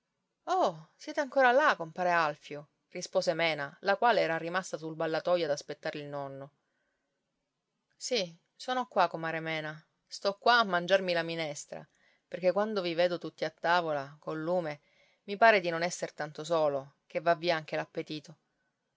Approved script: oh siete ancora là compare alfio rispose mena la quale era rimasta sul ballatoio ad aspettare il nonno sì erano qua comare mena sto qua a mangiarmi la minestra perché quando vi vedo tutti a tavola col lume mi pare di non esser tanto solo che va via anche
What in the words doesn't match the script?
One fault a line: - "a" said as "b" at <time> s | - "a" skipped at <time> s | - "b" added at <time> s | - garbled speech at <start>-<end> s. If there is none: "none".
- "erano" said as "sono" at 8.5 s